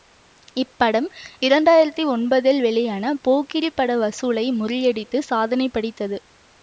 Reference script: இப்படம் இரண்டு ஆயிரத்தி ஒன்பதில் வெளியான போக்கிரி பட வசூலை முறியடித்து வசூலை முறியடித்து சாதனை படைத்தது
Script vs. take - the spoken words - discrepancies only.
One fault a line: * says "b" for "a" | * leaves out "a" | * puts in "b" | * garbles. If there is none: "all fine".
* leaves out "வசூலை முறியடித்து"